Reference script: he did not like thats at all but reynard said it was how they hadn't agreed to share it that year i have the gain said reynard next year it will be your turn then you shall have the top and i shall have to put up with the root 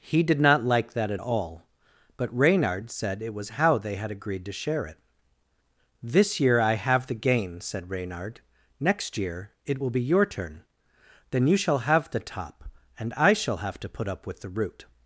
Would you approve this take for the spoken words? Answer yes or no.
no